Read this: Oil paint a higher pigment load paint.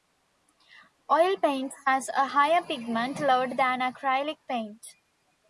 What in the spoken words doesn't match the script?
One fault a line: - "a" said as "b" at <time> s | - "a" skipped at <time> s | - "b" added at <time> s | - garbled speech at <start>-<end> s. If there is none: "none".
- "has" added at 1.9 s
- "than acrylic" added at 3.6 s